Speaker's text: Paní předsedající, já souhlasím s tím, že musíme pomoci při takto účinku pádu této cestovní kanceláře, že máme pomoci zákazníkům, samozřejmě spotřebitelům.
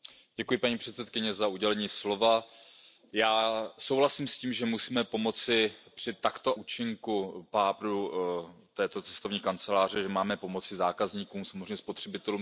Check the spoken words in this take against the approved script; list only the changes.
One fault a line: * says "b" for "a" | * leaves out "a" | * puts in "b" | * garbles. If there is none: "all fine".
all fine